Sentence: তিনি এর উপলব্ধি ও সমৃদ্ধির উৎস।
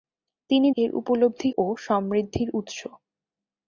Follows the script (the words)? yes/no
yes